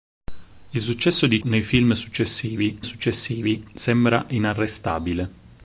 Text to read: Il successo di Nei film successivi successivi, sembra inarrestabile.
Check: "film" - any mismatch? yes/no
no